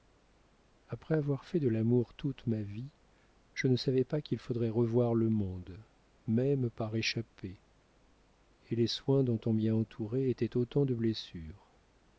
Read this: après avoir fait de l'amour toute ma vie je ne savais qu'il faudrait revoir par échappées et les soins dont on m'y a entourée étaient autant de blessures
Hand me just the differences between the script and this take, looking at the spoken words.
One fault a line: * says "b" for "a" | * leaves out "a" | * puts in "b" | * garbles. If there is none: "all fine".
* puts in "pas"
* puts in "le monde même"